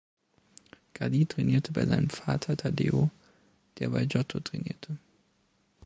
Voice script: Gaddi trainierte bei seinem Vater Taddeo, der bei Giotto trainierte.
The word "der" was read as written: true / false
true